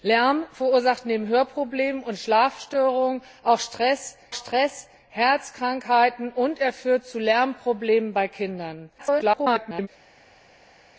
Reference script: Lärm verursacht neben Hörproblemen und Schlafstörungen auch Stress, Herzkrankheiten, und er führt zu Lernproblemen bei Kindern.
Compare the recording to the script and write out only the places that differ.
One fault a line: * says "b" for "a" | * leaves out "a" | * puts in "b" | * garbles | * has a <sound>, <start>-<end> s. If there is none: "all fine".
* puts in "Stress"
* garbles